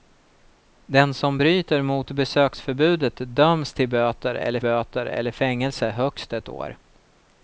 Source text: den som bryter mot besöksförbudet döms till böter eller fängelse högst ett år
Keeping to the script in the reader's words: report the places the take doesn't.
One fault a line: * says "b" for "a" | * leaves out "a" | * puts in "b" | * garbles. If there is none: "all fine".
* puts in "böter eller"